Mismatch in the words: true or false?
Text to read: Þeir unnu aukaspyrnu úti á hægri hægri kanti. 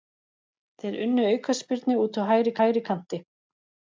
false